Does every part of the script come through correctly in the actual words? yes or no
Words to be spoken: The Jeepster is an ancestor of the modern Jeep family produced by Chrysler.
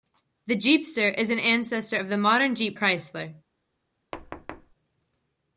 no